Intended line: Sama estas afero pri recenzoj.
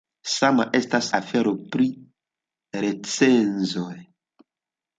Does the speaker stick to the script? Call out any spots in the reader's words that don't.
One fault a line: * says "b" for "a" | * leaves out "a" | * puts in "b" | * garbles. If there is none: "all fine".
all fine